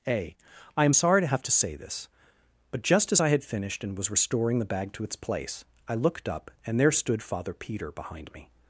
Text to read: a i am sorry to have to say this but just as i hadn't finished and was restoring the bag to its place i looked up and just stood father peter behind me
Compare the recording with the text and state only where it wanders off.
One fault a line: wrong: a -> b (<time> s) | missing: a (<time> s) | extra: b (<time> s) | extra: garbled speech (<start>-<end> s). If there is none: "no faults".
wrong: hadn't -> had (3.3 s)
wrong: just -> there (6.8 s)